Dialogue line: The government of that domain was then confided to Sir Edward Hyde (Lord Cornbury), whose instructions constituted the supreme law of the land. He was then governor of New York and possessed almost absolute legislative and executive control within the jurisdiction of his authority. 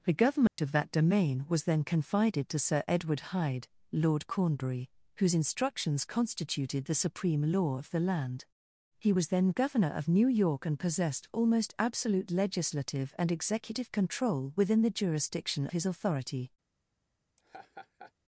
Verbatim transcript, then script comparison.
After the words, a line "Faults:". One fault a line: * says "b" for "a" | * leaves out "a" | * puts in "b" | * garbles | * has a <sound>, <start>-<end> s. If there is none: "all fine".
The government of that domain was then confided to Sir Edward Hyde (Lord Cornbury), whose instructions constituted the supreme law of the land. He was then governor of New York and possessed almost absolute legislative and executive control within the jurisdiction his authority.
Faults:
* has a dropout, 0.5-0.6 s
* leaves out "of"
* has a laugh, 17.4-18.1 s